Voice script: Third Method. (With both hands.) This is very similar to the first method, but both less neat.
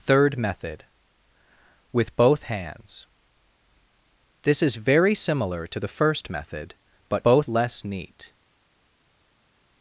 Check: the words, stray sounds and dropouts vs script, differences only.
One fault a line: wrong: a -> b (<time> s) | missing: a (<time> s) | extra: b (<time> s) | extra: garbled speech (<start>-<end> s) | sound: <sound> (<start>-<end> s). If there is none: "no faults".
no faults